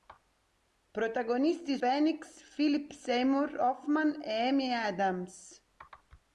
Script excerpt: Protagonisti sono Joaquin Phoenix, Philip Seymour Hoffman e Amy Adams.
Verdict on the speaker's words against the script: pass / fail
fail